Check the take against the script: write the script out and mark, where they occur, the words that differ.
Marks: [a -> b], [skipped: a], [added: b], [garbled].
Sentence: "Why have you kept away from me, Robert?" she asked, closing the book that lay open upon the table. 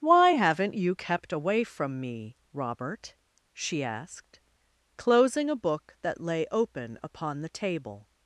"Why [have -> haven't] you kept away from me, Robert?" she asked, closing [the -> a] book that lay open upon the table.